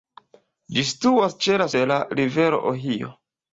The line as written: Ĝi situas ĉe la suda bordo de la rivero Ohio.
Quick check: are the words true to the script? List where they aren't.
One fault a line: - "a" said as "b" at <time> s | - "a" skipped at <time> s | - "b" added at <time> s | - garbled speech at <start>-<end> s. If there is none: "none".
- "suda bordo" skipped at 1.7 s